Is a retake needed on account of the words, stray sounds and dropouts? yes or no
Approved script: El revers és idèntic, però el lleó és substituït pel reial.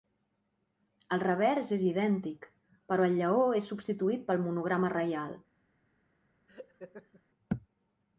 yes